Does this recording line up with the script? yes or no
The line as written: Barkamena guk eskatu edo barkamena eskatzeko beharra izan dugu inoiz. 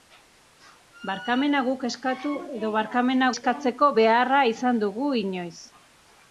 yes